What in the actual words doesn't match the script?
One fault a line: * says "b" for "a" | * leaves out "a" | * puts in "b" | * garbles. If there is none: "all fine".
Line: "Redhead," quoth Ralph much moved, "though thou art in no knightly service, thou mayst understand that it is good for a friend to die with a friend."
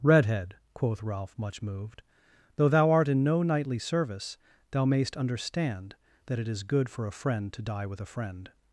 all fine